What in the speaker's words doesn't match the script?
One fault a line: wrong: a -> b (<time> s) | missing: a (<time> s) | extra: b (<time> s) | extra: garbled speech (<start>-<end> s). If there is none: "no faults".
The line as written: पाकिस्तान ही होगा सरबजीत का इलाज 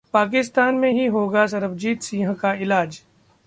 extra: में (0.7 s)
extra: सिंह (2.0 s)